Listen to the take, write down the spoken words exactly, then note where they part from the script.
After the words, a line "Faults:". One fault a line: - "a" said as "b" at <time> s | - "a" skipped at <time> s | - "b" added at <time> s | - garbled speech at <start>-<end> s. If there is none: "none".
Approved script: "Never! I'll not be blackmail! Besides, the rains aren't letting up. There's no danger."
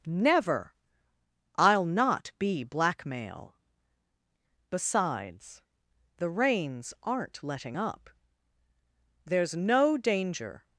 "Never! I'll not be blackmail! Besides, the rains aren't letting up. There's no danger."
Faults:
none